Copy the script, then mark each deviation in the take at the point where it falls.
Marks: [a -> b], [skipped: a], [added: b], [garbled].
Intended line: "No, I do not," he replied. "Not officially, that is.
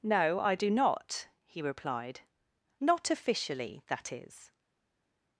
"No, I do not," he replied. "Not officially, that is.